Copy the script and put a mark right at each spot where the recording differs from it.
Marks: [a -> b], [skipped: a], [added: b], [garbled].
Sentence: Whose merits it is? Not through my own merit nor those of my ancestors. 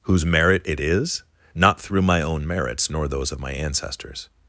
Whose [merits -> merit] it is? Not through my own [merit -> merits] nor those of my ancestors.